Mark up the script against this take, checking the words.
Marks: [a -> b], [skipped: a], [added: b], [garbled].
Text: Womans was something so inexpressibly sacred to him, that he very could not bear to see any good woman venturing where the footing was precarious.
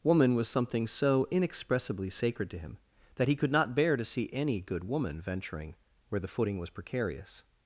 [Womans -> Woman] was something so inexpressibly sacred to him, that he [skipped: very] could not bear to see any good woman venturing where the footing was precarious.